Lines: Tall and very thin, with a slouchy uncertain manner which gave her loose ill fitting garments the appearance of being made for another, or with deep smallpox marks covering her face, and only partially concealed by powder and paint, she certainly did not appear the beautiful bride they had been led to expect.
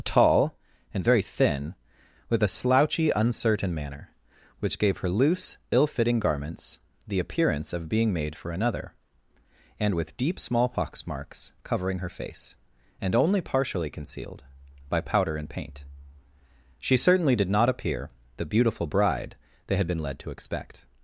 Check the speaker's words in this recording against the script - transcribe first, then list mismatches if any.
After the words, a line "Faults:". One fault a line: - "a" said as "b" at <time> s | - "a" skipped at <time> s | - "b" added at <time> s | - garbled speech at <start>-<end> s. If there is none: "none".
Tall and very thin, with a slouchy uncertain manner which gave her loose ill fitting garments the appearance of being made for another, and with deep smallpox marks covering her face, and only partially concealed by powder and paint, she certainly did not appear the beautiful bride they had been led to expect.
Faults:
- "or" said as "and" at 9.8 s